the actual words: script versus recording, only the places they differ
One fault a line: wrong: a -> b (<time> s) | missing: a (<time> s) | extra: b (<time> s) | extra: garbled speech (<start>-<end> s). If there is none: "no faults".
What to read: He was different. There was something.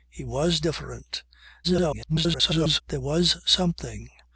extra: garbled speech (1.6-2.8 s)